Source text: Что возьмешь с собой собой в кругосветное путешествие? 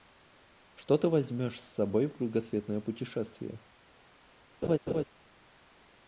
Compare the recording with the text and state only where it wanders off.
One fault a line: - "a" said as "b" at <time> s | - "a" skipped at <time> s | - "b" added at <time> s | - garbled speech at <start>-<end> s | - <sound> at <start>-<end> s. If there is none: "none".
- "ты" added at 1.0 s
- "собой" skipped at 2.1 s
- laugh at 4.6-5.0 s